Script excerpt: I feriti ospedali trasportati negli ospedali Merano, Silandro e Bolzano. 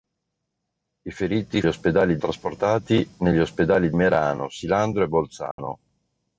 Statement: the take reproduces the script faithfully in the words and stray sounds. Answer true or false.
false